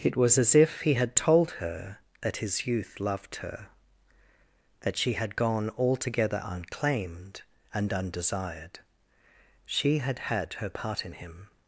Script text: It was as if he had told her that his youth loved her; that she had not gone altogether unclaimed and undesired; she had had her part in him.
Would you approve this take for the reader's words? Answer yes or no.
no